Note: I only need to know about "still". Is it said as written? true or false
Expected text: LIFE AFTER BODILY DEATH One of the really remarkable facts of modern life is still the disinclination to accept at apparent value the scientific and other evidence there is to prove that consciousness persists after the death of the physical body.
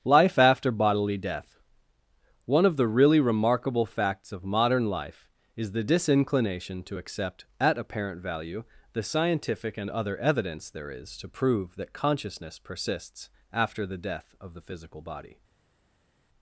false